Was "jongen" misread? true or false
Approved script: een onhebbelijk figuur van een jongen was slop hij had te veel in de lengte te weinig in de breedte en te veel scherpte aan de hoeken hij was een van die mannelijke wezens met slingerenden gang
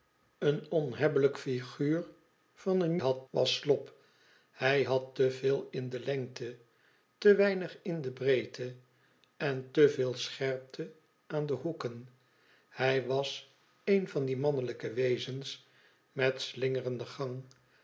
true